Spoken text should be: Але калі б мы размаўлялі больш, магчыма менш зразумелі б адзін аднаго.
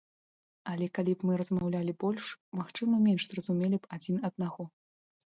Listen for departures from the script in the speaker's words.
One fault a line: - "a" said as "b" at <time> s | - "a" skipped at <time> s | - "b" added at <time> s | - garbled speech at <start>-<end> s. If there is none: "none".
none